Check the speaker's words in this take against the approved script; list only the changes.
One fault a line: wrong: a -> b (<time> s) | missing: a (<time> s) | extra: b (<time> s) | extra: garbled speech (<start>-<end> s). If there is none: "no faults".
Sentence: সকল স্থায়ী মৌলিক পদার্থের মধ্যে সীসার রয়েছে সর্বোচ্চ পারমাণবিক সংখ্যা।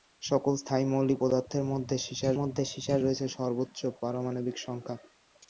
extra: মধ্যে সীসার (2.3 s)